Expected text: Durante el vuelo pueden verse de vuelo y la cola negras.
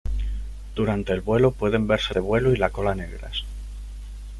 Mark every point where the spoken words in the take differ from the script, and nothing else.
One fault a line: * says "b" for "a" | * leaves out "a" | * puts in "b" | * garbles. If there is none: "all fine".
all fine